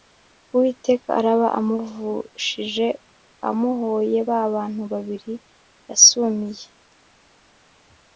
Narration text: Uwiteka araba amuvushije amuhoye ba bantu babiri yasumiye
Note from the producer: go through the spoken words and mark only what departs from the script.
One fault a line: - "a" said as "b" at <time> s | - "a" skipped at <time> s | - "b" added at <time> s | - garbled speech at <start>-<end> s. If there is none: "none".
none